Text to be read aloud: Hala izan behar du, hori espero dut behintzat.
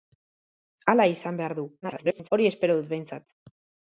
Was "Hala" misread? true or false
false